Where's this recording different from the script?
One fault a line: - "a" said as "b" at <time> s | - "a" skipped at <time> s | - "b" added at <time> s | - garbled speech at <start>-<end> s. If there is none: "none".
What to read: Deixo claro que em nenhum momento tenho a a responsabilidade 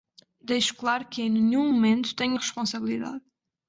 none